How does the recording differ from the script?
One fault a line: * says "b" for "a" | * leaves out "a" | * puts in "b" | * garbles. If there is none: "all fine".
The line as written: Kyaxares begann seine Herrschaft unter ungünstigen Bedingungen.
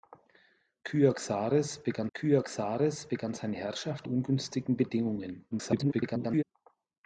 * puts in "kyaxares begann"
* leaves out "unter"
* garbles